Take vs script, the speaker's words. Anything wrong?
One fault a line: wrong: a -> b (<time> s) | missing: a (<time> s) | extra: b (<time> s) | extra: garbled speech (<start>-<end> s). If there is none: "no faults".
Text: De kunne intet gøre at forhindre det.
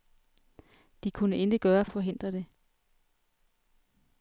no faults